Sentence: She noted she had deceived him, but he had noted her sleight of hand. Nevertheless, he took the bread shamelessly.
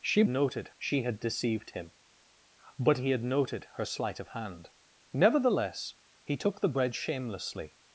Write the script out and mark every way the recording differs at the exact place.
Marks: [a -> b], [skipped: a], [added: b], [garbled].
She noted she had deceived him, but he had noted her sleight of hand. Nevertheless, he took the bread shamelessly.